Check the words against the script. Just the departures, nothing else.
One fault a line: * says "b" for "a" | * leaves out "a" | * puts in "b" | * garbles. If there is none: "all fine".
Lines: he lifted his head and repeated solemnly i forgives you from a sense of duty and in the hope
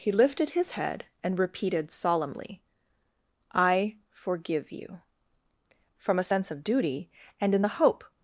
* says "forgive" for "forgives"